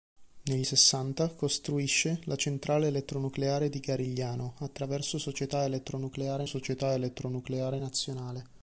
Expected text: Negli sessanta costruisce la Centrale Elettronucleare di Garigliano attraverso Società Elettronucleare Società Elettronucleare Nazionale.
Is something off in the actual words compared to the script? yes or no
no